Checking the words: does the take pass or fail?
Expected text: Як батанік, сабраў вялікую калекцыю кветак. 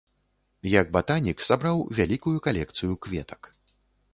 pass